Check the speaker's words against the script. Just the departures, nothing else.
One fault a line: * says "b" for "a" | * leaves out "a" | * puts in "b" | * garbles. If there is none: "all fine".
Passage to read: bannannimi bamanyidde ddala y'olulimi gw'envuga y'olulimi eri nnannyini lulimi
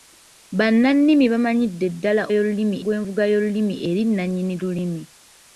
all fine